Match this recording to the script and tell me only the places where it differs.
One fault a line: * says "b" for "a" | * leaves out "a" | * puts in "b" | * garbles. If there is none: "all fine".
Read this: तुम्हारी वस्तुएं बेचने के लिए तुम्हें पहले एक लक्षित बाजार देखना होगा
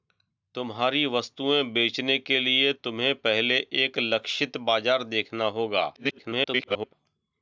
* garbles